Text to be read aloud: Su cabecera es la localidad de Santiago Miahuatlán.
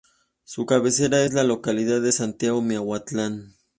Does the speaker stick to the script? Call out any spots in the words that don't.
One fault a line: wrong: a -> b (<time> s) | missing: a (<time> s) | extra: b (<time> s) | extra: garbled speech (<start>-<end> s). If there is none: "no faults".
no faults